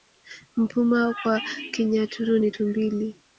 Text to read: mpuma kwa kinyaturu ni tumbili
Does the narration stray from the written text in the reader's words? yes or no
no